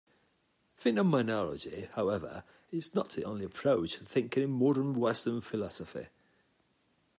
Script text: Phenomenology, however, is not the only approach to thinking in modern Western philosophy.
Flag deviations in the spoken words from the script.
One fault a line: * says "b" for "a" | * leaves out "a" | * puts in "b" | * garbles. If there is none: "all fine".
all fine